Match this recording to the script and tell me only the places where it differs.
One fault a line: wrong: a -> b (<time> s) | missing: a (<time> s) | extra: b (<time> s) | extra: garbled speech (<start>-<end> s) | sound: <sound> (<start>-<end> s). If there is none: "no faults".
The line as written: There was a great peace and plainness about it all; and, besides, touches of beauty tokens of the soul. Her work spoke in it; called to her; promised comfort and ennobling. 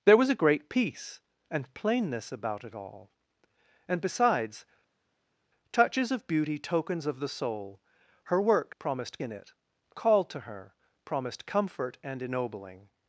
wrong: spoke -> promised (8.8 s)